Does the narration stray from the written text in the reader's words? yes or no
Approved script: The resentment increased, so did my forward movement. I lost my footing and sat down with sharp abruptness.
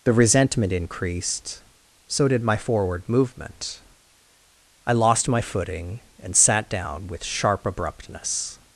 no